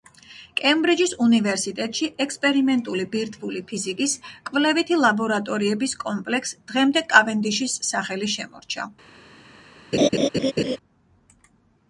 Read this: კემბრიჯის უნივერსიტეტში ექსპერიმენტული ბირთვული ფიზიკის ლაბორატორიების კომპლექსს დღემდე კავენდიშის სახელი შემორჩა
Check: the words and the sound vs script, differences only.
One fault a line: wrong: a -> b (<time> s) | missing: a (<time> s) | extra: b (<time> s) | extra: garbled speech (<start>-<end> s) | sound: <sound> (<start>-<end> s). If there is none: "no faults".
extra: კვლევითი (4.5 s)
sound: laugh (9.9-10.8 s)